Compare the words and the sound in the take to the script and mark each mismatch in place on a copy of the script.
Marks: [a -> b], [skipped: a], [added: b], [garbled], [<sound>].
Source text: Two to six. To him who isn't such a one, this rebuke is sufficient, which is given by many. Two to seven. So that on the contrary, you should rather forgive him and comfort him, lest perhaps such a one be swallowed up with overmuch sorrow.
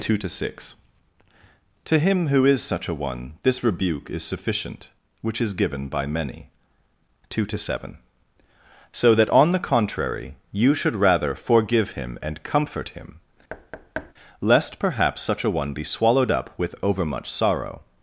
Two to six. To him who [isn't -> is] such a one, this rebuke is sufficient, which is given by many. Two to seven. So that on the contrary, you should rather forgive him and comfort him, [thud] lest perhaps such a one be swallowed up with overmuch sorrow.